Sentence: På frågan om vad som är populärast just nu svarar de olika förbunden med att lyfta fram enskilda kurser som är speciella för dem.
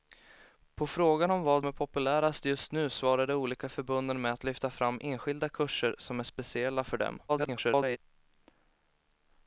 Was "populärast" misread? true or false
false